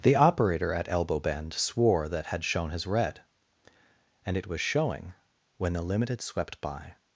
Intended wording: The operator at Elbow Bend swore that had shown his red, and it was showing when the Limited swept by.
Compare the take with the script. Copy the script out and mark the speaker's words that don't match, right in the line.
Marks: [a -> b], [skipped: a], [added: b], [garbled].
The operator at Elbow Bend swore that had shown his red, and it was showing when the Limited swept by.